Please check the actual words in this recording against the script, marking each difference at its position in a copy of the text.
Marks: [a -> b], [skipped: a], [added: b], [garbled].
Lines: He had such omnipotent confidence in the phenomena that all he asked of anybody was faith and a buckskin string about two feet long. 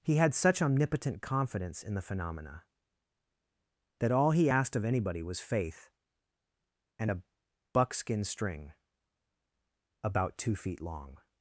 He had such omnipotent confidence in the phenomena that all he asked of anybody was faith and a buckskin string about two feet long.